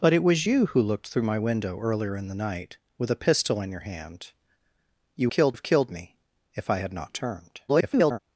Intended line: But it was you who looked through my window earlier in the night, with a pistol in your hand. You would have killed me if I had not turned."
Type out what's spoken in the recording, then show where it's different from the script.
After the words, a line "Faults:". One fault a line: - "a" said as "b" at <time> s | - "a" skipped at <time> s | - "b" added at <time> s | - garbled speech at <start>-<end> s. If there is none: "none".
But it was you who looked through my window earlier in the night, with a pistol in your hand. You killed have killed me if I had not turned." [garbled]
Faults:
- "would" said as "killed" at 5.3 s
- garbled speech at 7.7-8.2 s